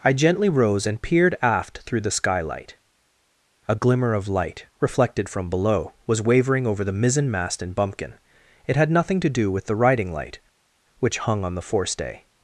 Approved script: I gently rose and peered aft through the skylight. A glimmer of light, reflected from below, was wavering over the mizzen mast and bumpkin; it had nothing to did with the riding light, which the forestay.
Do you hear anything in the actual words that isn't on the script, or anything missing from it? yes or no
yes